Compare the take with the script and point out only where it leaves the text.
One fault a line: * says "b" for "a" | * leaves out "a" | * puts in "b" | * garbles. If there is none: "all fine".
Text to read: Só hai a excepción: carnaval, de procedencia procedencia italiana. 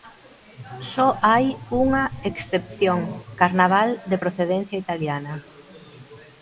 * says "unha" for "a"
* leaves out "procedencia"